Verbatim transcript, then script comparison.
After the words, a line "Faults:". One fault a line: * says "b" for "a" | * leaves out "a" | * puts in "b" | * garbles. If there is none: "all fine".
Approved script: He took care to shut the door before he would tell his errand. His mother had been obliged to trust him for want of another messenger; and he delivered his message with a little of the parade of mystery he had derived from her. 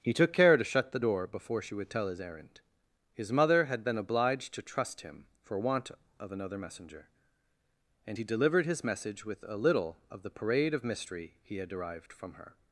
He took care to shut the door before she would tell his errand. His mother had been obliged to trust him for want of another messenger; and he delivered his message with a little of the parade of mystery he had derived from her.
Faults:
* says "she" for "he"